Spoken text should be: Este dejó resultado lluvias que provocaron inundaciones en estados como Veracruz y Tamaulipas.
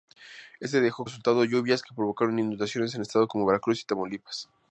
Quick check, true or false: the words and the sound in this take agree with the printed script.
true